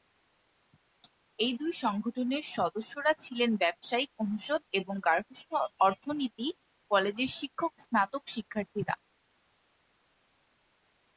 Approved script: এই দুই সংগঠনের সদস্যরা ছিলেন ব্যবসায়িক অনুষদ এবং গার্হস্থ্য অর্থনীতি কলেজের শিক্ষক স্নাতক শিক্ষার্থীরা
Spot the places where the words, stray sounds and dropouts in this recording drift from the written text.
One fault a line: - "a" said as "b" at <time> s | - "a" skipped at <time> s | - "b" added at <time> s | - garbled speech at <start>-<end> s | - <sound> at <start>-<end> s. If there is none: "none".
none